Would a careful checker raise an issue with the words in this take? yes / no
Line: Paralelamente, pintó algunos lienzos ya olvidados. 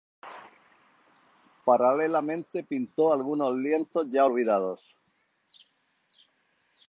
no